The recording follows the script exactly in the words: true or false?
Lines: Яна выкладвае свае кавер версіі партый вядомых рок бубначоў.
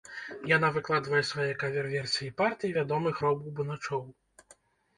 true